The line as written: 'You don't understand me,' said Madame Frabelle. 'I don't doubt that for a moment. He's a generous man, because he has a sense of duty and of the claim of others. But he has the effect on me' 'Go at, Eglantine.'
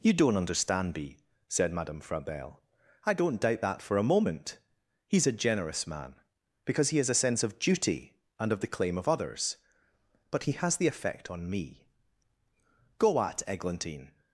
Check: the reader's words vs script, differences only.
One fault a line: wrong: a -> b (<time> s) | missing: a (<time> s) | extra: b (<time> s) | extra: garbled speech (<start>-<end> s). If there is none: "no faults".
no faults